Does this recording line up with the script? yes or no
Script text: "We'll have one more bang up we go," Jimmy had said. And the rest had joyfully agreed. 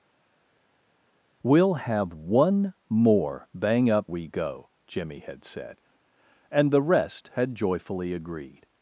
yes